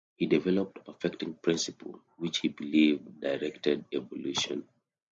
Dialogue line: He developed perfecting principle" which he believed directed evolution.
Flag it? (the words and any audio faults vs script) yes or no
no